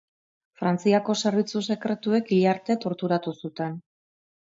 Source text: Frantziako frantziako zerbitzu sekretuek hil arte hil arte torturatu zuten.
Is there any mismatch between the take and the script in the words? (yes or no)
yes